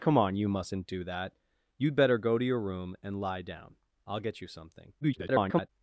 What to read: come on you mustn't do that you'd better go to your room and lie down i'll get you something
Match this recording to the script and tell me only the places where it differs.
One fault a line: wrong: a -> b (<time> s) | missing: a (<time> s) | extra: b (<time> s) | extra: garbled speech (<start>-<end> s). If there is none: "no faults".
extra: garbled speech (5.0-5.7 s)